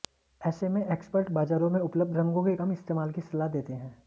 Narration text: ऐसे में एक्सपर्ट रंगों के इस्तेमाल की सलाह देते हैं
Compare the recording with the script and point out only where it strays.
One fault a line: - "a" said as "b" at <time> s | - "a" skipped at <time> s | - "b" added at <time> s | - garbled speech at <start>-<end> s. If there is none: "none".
- "बाजारों में उपलब्ध" added at 1.3 s
- "कम" added at 2.6 s